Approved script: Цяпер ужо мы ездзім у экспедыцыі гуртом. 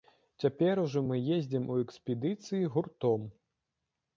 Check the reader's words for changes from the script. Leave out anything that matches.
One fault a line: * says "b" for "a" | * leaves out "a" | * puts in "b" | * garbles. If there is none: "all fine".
all fine